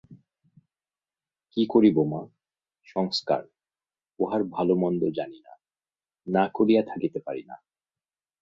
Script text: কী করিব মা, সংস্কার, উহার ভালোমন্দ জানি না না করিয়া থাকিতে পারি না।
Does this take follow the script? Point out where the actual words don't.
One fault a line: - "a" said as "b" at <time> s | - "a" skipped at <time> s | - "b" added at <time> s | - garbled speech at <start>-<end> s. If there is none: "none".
none